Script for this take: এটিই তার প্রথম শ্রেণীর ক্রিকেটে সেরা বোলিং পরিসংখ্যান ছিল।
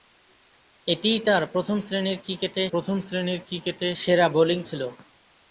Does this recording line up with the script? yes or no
no